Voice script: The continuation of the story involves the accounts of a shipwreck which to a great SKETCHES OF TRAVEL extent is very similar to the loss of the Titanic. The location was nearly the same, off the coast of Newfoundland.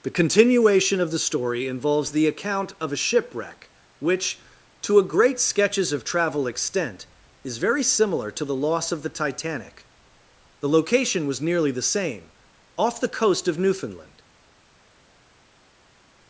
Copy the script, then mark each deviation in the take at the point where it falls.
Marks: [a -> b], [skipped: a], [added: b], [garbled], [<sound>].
The continuation of the story involves the [accounts -> account] of a shipwreck which to a great SKETCHES OF TRAVEL extent is very similar to the loss of the Titanic. The location was nearly the same, off the coast of Newfoundland.